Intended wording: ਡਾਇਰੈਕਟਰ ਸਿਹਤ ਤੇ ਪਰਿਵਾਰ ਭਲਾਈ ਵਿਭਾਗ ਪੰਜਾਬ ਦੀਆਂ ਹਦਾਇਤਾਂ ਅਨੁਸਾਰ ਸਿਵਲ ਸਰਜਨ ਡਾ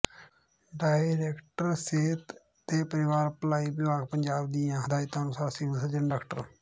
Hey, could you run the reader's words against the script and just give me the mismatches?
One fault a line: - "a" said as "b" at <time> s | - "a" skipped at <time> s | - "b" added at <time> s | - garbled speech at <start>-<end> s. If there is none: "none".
none